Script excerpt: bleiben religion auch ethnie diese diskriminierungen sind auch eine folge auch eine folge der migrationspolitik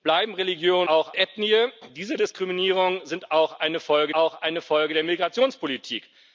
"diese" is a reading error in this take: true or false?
false